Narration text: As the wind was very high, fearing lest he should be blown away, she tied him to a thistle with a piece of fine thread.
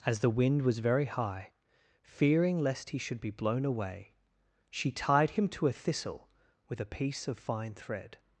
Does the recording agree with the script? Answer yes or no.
yes